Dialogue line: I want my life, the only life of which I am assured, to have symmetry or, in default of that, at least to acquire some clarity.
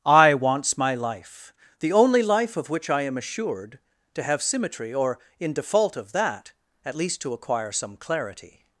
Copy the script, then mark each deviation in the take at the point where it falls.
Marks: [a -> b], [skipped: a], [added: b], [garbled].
I [want -> wants] my life, the only life of which I am assured, to have symmetry or, in default of that, at least to acquire some clarity.